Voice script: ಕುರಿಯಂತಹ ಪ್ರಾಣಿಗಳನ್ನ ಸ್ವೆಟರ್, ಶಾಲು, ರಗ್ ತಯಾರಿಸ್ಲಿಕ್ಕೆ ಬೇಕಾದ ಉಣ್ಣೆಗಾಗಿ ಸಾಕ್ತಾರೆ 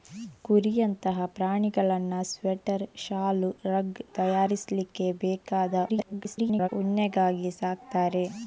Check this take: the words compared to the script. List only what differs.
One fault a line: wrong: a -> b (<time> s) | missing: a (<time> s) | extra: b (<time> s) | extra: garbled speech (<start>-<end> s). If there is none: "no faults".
extra: garbled speech (5.9-6.7 s)